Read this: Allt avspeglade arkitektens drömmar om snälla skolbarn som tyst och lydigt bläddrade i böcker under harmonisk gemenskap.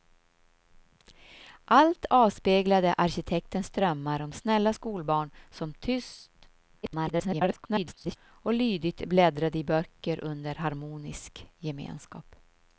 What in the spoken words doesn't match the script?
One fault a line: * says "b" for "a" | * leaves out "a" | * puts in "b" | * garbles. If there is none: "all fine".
* garbles